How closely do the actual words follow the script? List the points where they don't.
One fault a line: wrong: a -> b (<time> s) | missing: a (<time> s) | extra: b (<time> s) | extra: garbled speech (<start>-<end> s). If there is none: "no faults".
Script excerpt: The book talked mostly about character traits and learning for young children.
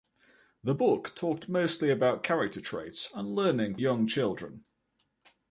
missing: for (3.8 s)